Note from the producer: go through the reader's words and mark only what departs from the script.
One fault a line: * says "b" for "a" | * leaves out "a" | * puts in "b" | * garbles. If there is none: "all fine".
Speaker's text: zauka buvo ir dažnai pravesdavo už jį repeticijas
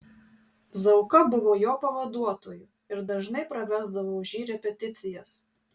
* puts in "jo pavaduotoju"